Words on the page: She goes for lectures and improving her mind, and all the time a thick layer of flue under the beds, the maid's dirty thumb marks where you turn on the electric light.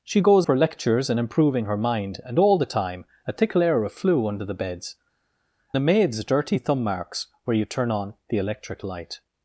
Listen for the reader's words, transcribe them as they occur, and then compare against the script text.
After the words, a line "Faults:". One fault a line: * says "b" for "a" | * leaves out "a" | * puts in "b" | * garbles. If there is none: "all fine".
She goes for lectures and improving her mind, and all the time a thick layer of flue under the beds, the maid's dirty thumb marks where you turn on the electric light.
Faults:
all fine